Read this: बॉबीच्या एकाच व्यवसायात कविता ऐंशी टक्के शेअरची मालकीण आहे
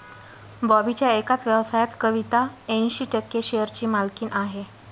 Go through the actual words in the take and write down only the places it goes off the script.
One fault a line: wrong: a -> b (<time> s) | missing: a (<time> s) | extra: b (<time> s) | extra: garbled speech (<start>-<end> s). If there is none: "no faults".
no faults